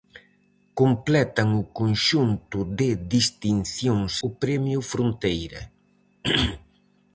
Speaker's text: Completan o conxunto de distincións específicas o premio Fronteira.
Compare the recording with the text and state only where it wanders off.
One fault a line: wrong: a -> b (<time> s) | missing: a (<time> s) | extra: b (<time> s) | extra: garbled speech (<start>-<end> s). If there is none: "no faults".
missing: específicas (4.1 s)